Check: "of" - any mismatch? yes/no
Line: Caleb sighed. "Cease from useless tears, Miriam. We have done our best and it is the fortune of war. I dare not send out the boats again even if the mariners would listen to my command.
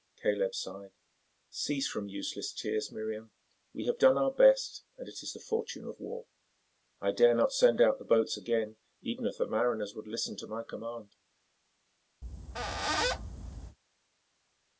no